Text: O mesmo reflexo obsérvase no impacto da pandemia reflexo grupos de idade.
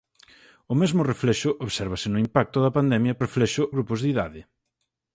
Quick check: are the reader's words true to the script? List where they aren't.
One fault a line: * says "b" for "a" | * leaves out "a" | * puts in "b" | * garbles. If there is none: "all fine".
all fine